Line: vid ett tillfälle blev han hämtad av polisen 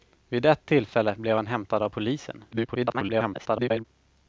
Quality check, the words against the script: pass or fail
fail